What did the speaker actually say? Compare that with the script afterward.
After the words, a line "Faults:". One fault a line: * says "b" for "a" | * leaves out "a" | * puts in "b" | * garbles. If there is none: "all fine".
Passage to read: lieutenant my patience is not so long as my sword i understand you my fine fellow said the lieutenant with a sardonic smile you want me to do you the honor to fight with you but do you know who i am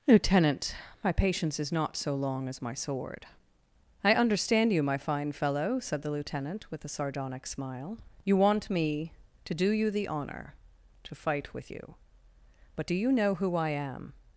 lieutenant my patience is not so long as my sword i understand you my fine fellow said the lieutenant with a sardonic smile you want me to do you the honor to fight with you but do you know who i am
Faults:
all fine